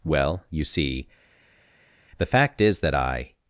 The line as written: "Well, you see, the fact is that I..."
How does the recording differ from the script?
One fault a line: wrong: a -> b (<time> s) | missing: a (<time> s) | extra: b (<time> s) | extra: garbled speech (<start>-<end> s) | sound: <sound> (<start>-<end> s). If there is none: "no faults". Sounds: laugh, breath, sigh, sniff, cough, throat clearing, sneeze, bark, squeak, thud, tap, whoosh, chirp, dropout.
no faults